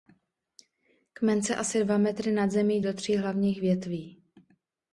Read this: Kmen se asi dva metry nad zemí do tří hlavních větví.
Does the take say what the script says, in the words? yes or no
yes